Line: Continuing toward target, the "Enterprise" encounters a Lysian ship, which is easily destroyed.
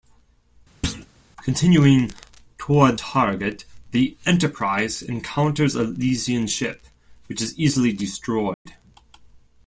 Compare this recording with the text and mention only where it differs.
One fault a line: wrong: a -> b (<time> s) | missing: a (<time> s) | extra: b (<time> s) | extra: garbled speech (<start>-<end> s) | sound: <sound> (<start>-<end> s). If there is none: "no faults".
sound: thud (0.8-1.1 s)
sound: dropout (8.5-8.7 s)